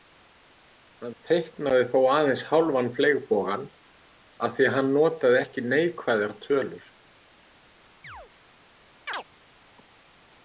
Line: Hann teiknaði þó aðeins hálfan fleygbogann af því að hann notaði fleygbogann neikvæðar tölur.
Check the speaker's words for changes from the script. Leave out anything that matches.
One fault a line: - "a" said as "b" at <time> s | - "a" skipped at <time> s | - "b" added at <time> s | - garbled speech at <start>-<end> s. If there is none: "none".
- "fleygbogann" said as "ekki" at 5.4 s